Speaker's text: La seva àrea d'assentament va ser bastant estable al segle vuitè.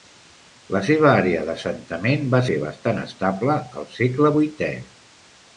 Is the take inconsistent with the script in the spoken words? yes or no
no